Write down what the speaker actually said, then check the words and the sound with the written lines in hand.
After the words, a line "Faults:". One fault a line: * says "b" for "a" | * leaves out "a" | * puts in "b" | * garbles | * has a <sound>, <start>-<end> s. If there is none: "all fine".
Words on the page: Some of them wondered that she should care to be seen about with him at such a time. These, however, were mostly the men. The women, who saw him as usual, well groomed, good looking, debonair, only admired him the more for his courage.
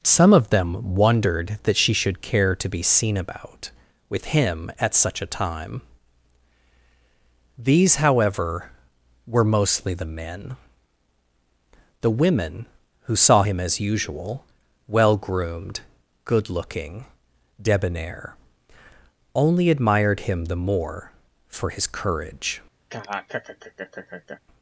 Some of them wondered that she should care to be seen about with him at such a time. These, however, were mostly the men. The women, who saw him as usual, well groomed, good looking, debonair, only admired him the more for his courage.
Faults:
* has a laugh, 22.9-24.4 s